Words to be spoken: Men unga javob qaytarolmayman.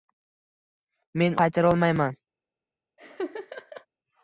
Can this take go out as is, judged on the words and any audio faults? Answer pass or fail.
fail